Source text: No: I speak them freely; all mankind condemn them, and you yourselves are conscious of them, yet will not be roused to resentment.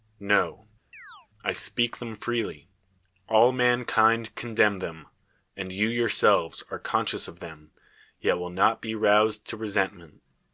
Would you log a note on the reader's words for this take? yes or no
no